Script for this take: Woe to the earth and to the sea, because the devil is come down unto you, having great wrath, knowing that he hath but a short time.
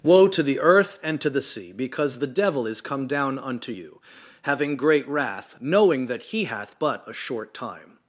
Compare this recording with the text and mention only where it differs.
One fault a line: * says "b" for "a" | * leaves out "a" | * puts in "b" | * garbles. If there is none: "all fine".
all fine